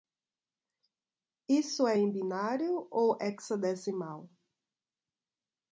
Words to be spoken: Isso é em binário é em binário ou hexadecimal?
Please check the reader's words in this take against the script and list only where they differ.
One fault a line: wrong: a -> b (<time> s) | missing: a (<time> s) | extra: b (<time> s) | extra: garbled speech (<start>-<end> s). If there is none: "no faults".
missing: é em binário (2.9 s)